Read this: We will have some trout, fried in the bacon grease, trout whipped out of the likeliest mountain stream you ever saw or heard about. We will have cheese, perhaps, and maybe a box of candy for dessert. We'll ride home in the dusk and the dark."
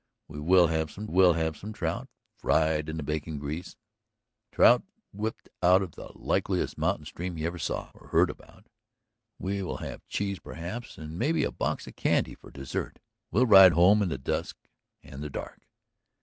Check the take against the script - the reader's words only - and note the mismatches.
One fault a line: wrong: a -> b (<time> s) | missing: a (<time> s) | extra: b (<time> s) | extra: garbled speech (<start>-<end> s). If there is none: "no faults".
extra: will have some (1.1 s)